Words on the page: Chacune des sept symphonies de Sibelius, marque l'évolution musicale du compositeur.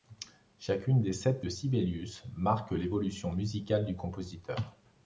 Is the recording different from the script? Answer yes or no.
yes